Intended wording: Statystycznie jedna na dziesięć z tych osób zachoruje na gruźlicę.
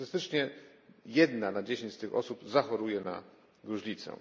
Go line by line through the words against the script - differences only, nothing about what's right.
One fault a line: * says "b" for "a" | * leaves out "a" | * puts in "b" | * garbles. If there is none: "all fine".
all fine